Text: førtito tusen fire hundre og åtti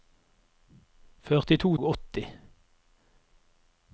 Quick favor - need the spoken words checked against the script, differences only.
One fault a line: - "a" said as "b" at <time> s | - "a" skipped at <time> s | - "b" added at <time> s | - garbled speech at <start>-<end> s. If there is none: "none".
- "tusen fire hundre" skipped at 1.7 s